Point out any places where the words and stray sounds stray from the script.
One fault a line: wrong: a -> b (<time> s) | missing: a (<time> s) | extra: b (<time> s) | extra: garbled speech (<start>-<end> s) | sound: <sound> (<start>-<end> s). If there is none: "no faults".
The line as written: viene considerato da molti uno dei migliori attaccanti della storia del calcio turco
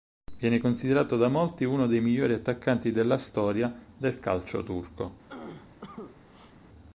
sound: cough (5.3-6.5 s)